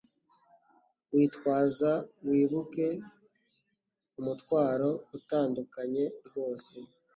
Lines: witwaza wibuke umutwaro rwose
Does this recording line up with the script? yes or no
no